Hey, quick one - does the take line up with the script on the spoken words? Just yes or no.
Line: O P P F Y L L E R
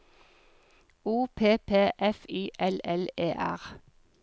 yes